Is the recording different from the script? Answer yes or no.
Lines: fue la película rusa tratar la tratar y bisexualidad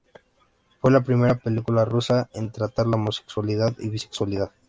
yes